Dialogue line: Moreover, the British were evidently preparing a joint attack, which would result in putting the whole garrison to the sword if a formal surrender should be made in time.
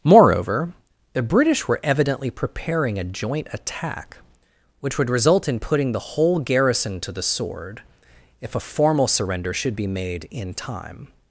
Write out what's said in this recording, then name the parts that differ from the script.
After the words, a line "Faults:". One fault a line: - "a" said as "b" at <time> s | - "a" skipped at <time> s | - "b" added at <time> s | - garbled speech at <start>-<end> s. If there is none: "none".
Moreover, the British were evidently preparing a joint attack, which would result in putting the whole garrison to the sword if a formal surrender should be made in time.
Faults:
none